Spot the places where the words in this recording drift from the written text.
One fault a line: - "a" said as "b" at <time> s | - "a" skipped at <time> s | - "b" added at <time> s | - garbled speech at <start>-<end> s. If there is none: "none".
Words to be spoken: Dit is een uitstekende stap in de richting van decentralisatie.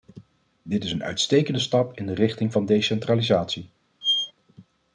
none